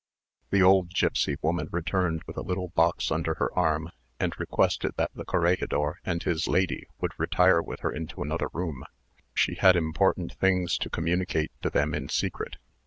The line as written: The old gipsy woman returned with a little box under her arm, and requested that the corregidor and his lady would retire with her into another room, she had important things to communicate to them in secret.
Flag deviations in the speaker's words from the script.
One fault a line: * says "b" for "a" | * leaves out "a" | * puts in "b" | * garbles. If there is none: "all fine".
all fine